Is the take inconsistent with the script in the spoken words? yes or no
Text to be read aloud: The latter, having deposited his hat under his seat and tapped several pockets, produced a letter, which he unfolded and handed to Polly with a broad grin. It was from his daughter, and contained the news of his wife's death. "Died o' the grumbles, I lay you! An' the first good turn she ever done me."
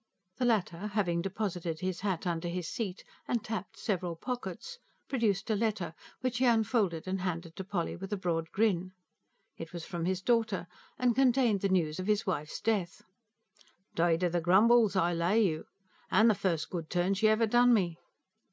no